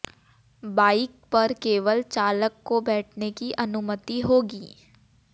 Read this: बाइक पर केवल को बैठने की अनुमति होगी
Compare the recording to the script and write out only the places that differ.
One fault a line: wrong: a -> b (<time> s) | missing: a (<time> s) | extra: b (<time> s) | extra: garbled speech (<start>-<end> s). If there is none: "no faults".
extra: चालक (2.0 s)